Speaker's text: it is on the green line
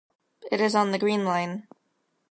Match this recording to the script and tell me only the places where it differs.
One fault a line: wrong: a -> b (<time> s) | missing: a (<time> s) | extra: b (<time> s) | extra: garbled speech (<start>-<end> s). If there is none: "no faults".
no faults